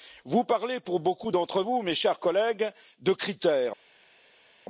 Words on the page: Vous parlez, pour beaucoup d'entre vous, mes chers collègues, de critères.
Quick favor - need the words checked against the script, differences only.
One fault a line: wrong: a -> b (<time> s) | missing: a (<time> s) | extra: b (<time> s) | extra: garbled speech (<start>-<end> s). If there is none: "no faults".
no faults